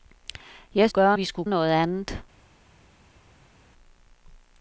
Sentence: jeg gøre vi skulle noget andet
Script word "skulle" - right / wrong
right